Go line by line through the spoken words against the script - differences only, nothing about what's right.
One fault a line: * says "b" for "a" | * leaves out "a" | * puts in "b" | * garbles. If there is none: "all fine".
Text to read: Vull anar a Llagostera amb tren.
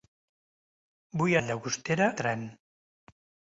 * leaves out "anar"
* leaves out "amb"